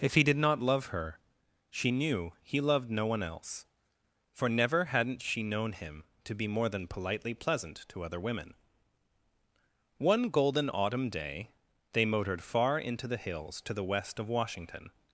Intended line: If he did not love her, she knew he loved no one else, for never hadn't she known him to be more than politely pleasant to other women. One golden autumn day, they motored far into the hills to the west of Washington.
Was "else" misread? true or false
false